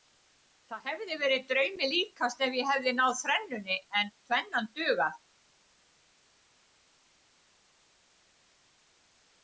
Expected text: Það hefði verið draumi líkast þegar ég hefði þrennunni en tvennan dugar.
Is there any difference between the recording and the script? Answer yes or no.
yes